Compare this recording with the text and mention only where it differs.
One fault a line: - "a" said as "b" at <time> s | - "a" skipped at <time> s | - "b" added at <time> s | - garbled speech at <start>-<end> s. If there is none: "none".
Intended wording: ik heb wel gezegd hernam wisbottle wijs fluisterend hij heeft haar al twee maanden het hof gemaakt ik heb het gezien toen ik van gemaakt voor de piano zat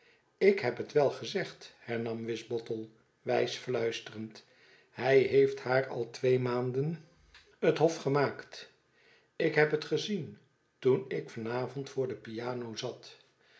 - "het" added at 0.8 s
- "gemaakt" said as "avond" at 11.5 s